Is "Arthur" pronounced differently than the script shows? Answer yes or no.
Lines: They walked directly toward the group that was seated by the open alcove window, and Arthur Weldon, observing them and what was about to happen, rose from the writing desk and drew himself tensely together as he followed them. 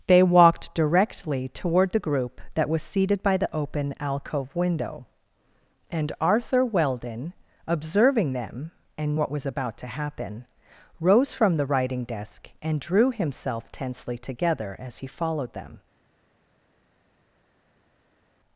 no